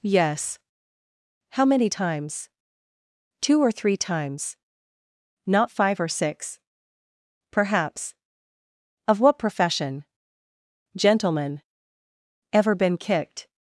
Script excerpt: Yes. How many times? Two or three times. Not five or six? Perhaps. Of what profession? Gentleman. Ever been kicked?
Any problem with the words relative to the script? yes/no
no